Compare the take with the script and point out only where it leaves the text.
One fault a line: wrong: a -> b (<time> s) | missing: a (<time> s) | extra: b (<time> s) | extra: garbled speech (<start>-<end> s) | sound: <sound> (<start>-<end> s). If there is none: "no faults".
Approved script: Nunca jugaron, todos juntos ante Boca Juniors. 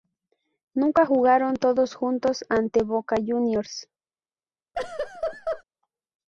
sound: laugh (4.7-5.6 s)